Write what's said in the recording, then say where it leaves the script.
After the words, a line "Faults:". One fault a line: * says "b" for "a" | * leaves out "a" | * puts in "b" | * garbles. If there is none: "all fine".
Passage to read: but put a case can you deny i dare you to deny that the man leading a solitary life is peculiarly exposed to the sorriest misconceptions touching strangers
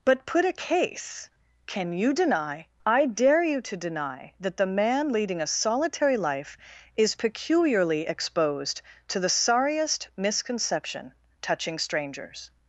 but put a case can you deny i dare you to deny that the man leading a solitary life is peculiarly exposed to the sorriest misconception touching strangers
Faults:
* says "misconception" for "misconceptions"